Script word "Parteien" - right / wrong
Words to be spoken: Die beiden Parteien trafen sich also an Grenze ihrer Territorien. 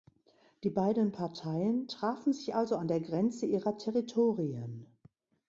right